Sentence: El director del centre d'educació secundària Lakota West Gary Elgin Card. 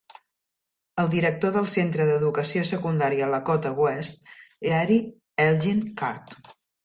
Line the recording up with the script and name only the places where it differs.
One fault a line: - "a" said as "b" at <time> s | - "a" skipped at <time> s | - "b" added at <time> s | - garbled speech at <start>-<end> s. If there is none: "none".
none